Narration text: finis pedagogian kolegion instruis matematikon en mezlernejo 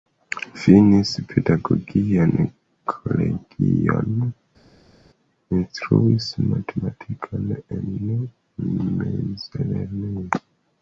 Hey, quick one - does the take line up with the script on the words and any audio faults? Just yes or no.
yes